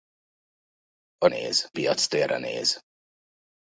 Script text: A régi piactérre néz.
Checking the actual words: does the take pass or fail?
fail